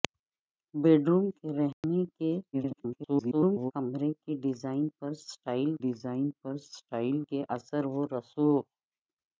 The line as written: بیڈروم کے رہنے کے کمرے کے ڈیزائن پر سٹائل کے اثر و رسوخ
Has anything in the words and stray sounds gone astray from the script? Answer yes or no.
yes